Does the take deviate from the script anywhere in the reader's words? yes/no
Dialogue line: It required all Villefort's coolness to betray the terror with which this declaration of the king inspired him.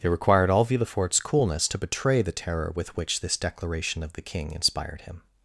no